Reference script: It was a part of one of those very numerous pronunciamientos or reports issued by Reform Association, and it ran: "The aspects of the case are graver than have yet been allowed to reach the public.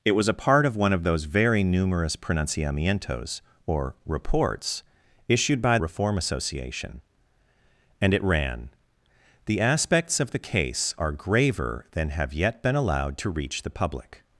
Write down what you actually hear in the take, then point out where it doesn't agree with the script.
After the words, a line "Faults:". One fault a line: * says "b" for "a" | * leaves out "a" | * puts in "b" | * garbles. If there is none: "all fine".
It was a part of one of those very numerous pronunciamientos or reports issued by Reform Association, and it ran: "The aspects of the case are graver than have yet been allowed to reach the public.
Faults:
all fine